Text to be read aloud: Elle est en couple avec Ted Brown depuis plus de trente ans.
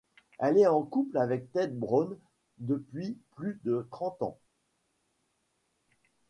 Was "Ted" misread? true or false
false